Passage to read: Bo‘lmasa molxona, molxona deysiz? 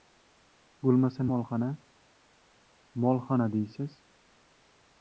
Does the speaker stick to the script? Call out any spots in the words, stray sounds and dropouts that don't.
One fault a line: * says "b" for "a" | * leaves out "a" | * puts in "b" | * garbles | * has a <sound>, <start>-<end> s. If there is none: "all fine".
all fine